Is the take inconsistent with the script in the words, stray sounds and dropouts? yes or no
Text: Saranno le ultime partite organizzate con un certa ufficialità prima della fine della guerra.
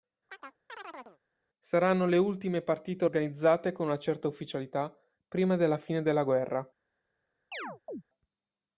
yes